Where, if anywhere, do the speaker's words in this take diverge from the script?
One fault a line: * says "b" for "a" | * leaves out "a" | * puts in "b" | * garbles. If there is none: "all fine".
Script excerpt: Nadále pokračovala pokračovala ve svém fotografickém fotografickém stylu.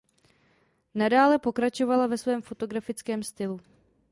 * leaves out "pokračovala"
* leaves out "fotografickém"